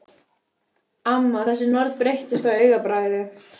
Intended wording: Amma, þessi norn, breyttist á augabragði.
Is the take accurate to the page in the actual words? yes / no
yes